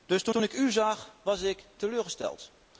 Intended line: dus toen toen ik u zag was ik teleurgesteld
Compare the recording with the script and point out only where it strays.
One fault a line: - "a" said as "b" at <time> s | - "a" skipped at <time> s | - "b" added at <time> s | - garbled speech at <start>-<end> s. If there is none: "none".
none